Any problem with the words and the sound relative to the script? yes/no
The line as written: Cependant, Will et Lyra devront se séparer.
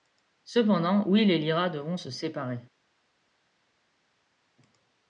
no